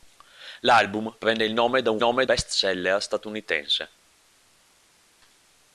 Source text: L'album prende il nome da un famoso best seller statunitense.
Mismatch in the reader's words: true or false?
true